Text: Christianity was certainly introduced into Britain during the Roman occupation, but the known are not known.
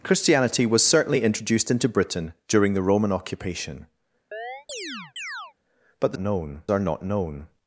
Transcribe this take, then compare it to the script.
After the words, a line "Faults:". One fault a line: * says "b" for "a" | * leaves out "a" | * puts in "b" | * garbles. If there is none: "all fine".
Christianity was certainly introduced into Britain during the Roman occupation, but the known are not known.
Faults:
all fine